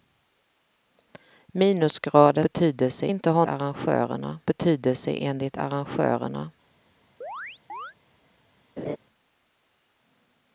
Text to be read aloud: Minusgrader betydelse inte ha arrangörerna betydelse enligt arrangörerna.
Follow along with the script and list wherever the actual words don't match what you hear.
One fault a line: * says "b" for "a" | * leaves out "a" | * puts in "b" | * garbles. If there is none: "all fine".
all fine